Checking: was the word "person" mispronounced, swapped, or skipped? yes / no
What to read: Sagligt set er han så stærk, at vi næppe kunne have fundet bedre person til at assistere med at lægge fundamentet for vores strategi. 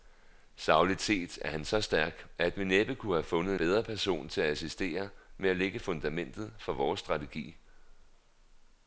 no